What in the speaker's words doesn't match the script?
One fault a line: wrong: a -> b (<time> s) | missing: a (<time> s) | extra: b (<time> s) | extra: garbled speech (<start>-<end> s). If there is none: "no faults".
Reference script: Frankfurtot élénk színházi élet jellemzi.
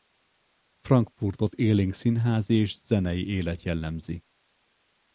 extra: és zenei (2.5 s)